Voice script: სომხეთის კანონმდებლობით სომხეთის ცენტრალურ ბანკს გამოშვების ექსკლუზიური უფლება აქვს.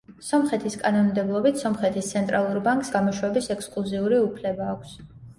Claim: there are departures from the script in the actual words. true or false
false